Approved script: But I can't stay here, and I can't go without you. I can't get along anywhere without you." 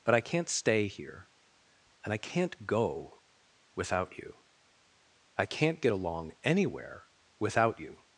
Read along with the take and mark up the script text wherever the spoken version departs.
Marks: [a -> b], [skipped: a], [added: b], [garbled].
But I can't stay here, and I can't go without you. I can't get along anywhere without you."